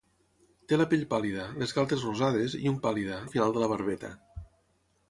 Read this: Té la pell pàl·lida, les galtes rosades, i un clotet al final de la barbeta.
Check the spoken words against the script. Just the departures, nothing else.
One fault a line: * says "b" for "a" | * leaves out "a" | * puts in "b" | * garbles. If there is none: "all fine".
* says "pàl·lida" for "clotet"